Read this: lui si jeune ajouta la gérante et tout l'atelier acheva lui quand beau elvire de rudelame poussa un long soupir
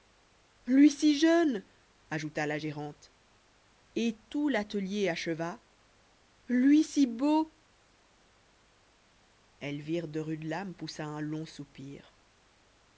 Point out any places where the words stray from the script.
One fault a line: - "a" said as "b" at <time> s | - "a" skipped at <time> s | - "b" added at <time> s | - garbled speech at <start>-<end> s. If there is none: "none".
- "quand" said as "si" at 6.8 s